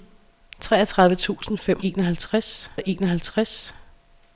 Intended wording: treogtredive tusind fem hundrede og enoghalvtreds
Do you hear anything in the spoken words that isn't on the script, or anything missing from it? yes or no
yes